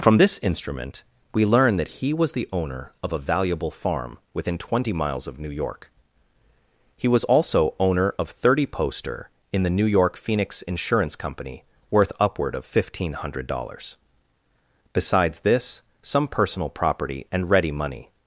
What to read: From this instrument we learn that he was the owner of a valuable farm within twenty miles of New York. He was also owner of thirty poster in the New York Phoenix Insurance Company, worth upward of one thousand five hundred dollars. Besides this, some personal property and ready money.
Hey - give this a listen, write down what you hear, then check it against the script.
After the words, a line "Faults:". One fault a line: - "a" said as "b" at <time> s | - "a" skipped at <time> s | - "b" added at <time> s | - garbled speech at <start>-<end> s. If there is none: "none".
From this instrument we learn that he was the owner of a valuable farm within twenty miles of New York. He was also owner of thirty poster in the New York Phoenix Insurance Company, worth upward of one thousand five hundred dollars. Besides this, some personal property and ready money.
Faults:
none